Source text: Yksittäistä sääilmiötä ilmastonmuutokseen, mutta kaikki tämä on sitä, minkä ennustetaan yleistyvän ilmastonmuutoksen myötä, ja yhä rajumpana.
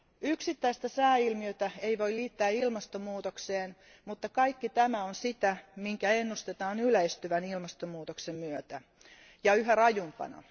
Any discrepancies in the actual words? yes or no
yes